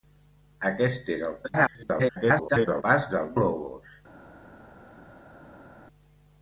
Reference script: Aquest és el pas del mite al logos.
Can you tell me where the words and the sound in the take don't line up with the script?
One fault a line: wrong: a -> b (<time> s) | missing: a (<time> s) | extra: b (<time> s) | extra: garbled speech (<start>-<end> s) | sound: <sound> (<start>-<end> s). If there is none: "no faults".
extra: garbled speech (1.4-2.8 s)
missing: mite al (3.3 s)